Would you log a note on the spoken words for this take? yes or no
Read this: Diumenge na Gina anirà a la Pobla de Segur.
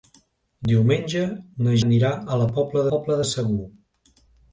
yes